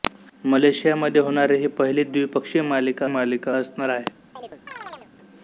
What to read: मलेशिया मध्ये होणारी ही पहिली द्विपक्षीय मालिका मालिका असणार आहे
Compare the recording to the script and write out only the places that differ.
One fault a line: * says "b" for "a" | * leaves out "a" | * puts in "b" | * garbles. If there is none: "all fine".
all fine